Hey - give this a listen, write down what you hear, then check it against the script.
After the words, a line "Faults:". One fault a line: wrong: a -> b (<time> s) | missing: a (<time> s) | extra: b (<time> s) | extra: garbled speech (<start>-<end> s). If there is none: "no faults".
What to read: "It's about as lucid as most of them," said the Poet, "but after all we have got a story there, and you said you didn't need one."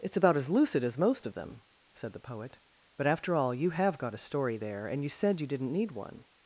"It's about as lucid as most of them," said the Poet, "but after all you have got a story there, and you said you didn't need one."
Faults:
wrong: we -> you (3.5 s)